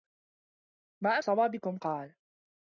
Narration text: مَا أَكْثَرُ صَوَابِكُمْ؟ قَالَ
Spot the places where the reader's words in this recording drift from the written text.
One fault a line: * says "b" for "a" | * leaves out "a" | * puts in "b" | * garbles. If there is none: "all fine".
* leaves out "أَكْثَرُ"